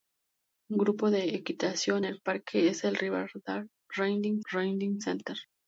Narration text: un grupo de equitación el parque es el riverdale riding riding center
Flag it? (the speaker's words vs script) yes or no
no